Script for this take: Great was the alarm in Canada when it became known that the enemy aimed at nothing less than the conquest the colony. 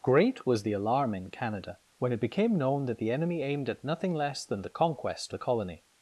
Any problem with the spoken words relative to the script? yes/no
no